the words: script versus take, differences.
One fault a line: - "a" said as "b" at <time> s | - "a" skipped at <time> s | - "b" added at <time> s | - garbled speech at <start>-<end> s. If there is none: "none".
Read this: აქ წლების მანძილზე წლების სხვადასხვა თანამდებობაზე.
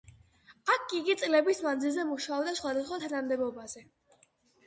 - "იგი" added at 1.0 s
- "წლების" said as "მუშაობდა" at 2.1 s